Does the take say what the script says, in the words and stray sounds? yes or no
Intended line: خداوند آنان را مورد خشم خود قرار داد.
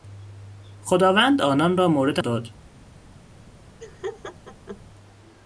no